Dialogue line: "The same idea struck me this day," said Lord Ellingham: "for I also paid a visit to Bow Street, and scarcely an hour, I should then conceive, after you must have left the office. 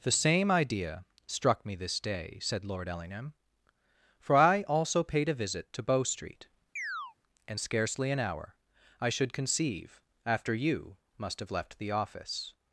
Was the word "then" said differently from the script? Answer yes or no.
yes